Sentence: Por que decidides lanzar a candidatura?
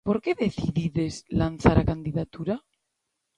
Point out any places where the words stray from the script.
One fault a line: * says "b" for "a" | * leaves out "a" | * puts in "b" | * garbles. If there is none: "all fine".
all fine